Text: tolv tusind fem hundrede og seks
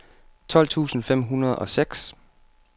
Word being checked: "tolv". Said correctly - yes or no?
yes